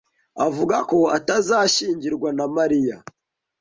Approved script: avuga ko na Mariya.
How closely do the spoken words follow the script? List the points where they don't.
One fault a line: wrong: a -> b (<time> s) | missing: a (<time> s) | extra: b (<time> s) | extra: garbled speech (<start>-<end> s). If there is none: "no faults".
extra: atazashyingirwa (1.2 s)